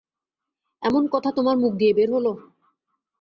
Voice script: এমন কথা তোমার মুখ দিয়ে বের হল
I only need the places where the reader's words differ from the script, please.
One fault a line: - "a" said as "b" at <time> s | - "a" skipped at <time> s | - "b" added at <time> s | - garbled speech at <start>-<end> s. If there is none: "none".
none